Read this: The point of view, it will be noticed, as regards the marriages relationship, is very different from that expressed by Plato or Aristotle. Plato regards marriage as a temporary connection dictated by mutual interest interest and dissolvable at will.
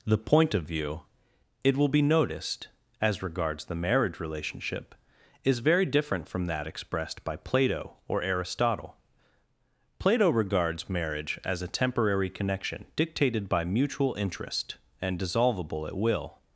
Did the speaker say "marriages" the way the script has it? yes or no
no